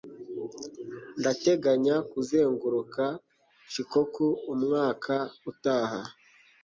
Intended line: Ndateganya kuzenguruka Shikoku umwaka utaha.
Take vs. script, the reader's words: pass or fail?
pass